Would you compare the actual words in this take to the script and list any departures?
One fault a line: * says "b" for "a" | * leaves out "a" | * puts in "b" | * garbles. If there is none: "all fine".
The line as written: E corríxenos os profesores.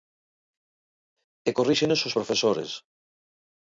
all fine